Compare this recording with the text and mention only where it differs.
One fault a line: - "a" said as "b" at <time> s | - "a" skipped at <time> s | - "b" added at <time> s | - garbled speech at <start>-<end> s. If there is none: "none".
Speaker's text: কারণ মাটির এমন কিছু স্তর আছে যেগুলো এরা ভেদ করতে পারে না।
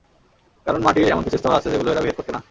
- "পারে" skipped at 2.3 s